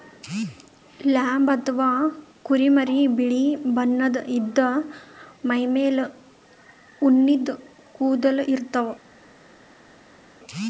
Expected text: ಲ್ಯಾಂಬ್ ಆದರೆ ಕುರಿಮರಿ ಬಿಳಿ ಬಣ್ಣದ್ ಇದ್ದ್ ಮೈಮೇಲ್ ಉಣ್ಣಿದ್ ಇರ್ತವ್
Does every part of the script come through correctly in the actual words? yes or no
no